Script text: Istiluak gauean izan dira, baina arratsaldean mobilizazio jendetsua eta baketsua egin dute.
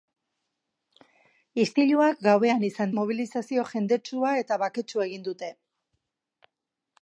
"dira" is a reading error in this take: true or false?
true